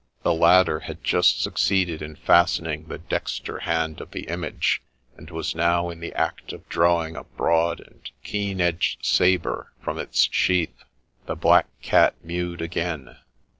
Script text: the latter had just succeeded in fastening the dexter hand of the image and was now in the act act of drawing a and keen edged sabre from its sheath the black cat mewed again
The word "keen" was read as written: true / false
true